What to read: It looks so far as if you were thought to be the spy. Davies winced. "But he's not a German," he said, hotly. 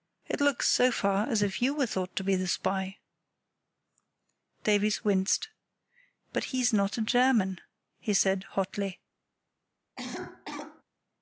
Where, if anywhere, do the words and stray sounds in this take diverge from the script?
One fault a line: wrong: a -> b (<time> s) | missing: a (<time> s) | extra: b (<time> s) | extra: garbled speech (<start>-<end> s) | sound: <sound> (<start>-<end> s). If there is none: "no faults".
sound: cough (10.0-10.8 s)